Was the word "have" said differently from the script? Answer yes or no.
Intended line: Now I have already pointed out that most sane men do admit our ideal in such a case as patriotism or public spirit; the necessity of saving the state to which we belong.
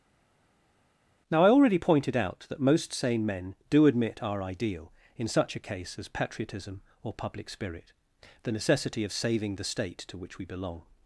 yes